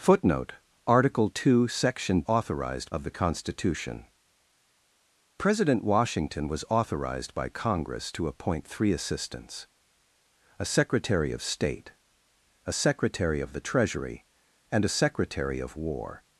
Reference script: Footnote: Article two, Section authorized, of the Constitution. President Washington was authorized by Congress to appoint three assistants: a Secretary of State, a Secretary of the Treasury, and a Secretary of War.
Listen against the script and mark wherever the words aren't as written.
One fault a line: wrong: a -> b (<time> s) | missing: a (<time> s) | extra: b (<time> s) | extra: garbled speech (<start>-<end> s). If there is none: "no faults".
no faults